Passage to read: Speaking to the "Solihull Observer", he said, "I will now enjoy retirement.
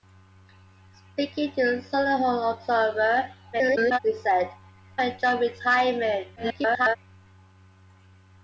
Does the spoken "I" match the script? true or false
false